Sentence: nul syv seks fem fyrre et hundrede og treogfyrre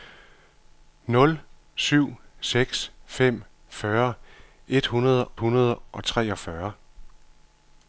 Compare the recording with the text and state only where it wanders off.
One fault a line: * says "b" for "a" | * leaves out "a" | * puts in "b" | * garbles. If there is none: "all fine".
* puts in "hundrede"